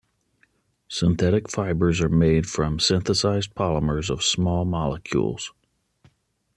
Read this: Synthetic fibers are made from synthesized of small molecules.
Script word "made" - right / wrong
right